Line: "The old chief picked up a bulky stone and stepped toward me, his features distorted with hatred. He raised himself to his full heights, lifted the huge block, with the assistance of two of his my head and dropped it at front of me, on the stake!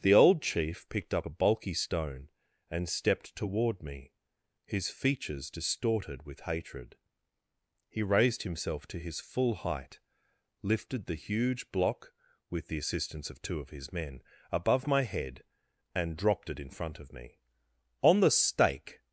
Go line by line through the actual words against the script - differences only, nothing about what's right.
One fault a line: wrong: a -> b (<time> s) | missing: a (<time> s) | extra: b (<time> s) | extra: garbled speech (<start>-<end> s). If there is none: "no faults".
wrong: heights -> height (9.5 s)
extra: men above (13.9 s)
wrong: at -> in (16.6 s)